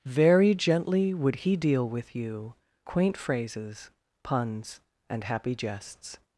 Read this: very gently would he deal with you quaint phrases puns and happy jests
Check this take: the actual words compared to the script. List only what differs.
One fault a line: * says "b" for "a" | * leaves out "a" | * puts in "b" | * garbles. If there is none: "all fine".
all fine